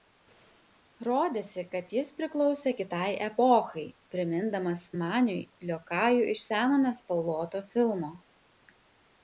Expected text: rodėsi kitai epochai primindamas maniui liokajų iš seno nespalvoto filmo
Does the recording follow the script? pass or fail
fail